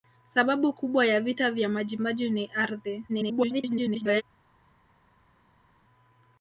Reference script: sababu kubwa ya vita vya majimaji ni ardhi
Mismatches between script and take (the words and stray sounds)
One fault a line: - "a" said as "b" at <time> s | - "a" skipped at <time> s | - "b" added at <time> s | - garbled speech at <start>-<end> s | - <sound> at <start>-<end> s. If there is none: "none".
- garbled speech at 3.1-4.2 s